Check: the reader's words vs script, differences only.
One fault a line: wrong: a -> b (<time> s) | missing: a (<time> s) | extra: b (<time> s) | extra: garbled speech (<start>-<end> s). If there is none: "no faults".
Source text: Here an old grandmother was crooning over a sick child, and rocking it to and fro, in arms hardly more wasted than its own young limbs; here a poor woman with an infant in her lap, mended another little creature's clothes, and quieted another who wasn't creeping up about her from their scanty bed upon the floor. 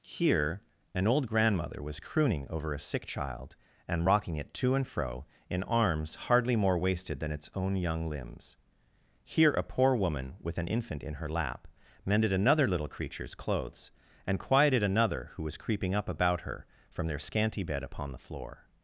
wrong: wasn't -> was (15.4 s)